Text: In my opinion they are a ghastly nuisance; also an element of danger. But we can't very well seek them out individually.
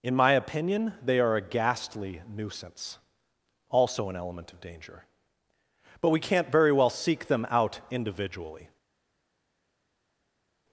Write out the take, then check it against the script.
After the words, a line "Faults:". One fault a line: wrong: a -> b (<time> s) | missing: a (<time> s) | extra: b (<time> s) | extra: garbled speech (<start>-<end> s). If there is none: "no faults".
In my opinion they are a ghastly nuisance; also an element of danger. But we can't very well seek them out individually.
Faults:
no faults